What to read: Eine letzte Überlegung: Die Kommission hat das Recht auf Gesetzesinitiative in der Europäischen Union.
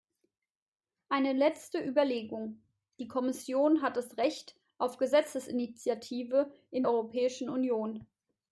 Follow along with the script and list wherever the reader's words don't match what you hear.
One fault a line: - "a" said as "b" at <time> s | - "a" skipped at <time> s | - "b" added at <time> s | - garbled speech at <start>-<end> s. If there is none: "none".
- "der" skipped at 6.8 s